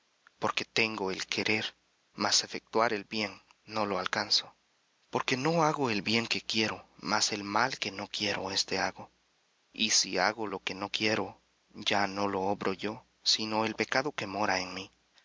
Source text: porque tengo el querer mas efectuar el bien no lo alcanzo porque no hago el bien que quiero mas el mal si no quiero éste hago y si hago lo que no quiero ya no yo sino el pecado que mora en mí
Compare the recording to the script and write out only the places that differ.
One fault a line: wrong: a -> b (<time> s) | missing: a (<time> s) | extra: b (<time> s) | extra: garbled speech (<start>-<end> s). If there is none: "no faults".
wrong: si -> que (7.8 s)
extra: lo obro (12.3 s)